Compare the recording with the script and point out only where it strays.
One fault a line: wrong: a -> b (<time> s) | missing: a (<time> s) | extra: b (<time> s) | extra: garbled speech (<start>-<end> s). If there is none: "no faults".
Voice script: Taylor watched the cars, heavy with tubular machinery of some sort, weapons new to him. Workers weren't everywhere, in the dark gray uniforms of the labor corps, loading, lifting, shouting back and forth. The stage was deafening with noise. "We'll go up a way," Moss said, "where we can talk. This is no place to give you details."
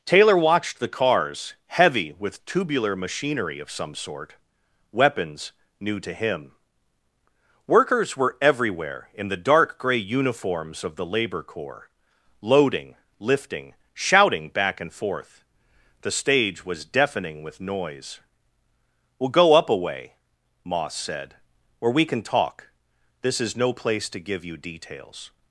wrong: weren't -> were (8.2 s)